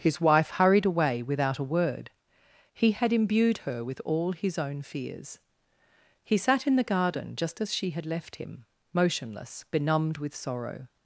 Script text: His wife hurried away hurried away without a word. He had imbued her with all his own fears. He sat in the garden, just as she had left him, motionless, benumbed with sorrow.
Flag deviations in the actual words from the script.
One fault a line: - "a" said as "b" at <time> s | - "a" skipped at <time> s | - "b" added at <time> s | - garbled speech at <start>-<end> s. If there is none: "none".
- "hurried away" skipped at 1.2 s